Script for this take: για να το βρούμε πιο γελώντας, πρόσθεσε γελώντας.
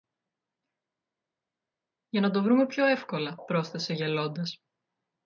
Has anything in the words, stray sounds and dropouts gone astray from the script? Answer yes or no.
yes